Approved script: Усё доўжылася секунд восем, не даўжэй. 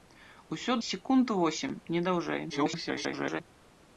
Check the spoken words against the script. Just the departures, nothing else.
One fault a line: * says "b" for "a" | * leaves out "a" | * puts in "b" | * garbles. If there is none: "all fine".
* leaves out "доўжылася"
* garbles